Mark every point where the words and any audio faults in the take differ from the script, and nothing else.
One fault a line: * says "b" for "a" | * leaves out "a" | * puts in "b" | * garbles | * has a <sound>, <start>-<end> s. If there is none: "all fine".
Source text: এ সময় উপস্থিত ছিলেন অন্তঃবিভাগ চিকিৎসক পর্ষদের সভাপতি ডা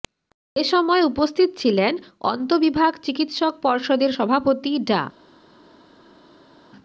all fine